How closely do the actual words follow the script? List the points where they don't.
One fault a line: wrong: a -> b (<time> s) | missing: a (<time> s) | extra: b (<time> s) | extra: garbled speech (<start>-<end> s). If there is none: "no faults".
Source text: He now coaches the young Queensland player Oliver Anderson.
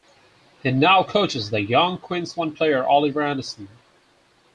no faults